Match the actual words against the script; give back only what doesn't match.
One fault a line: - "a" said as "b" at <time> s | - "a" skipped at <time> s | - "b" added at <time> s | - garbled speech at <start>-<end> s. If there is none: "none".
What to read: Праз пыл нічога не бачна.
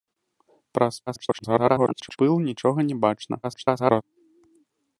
- garbled speech at 1.1-2.2 s
- garbled speech at 3.4-4.0 s